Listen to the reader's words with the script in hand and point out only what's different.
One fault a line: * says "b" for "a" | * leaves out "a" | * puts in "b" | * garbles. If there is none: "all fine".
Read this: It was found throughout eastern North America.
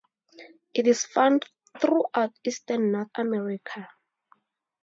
* says "is" for "was"